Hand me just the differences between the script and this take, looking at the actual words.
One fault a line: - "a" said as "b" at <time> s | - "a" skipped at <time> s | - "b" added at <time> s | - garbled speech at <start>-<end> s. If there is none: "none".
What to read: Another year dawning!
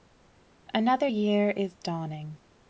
- "is" added at 1.5 s